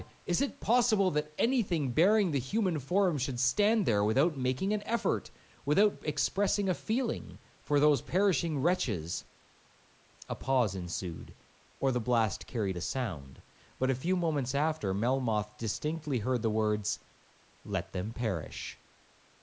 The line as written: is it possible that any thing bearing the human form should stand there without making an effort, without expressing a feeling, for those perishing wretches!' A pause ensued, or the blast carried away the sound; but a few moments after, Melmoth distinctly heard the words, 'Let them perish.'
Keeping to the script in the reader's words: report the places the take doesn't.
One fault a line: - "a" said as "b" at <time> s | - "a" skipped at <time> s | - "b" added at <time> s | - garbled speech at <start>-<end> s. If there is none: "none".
- "away" skipped at 12.8 s